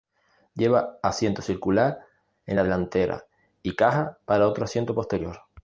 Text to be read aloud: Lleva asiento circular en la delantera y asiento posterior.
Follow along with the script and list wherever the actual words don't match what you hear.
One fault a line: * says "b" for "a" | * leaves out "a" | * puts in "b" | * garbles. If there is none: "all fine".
* puts in "caja para otro"